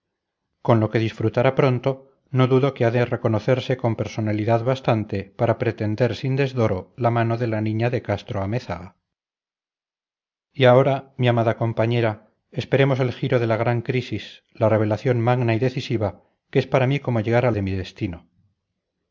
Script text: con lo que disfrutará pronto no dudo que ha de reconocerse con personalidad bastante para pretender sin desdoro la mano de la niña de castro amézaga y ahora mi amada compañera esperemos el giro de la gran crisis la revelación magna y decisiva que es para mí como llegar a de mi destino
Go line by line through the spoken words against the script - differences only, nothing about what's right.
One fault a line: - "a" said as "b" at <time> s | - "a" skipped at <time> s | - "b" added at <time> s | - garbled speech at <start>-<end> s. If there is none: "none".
none